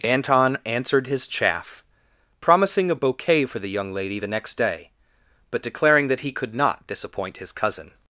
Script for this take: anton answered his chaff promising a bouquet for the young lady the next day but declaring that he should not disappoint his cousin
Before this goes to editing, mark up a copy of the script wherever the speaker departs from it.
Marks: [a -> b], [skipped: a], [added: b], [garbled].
anton answered his chaff promising a bouquet for the young lady the next day but declaring that he [should -> could] not disappoint his cousin